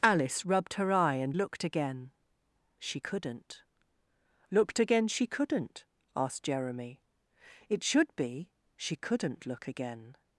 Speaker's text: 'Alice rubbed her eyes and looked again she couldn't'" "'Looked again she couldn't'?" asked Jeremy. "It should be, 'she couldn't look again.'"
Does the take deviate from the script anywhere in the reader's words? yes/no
yes